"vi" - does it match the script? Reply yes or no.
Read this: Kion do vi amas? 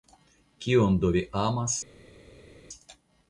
yes